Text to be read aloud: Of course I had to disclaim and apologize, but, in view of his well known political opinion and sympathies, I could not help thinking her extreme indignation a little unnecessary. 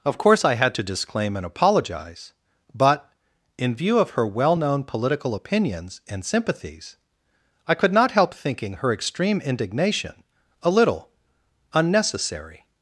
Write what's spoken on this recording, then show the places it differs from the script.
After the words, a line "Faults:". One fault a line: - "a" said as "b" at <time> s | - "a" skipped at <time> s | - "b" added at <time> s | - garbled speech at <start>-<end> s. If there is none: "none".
Of course I had to disclaim and apologize, but, in view of her well known political opinions and sympathies, I could not help thinking her extreme indignation a little unnecessary.
Faults:
- "his" said as "her" at 4.1 s
- "opinion" said as "opinions" at 5.3 s